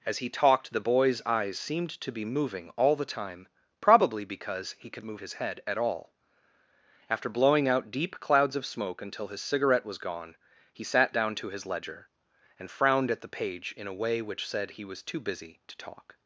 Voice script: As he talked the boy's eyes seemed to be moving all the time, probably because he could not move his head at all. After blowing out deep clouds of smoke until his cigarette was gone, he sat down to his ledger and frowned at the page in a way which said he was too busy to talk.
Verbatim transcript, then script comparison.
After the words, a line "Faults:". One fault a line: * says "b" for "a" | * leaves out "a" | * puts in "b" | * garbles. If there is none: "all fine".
As he talked the boy's eyes seemed to be moving all the time, probably because he could move his head at all. After blowing out deep clouds of smoke until his cigarette was gone, he sat down to his ledger and frowned at the page in a way which said he was too busy to talk.
Faults:
* leaves out "not"